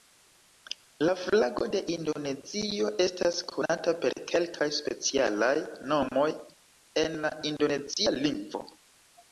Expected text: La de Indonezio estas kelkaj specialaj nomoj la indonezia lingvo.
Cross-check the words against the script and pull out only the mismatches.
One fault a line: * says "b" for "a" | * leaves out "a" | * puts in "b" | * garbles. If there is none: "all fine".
* puts in "flago"
* puts in "konata per"
* puts in "en"